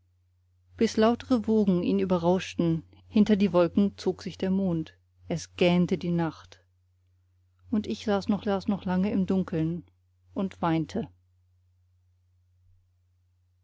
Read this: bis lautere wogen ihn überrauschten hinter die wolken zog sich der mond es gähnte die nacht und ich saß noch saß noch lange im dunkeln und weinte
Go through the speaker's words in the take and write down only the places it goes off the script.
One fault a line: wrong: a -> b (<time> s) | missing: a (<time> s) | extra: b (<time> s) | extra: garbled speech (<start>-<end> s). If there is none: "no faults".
no faults